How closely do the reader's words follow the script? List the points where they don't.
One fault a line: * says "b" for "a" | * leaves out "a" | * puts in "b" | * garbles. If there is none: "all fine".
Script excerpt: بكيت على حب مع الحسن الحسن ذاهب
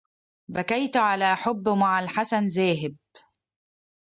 * leaves out "الحسن"